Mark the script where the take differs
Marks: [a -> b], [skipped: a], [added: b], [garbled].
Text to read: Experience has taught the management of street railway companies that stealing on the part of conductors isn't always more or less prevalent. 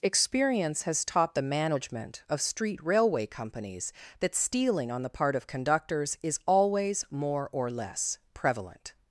Experience has taught the management of street railway companies that stealing on the part of conductors [isn't -> is] always more or less prevalent.